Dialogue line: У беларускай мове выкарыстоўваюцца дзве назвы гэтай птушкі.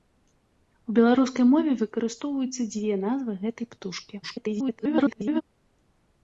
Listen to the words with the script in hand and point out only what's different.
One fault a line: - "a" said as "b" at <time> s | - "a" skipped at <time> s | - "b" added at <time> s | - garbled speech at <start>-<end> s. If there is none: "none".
- garbled speech at 4.2-5.4 s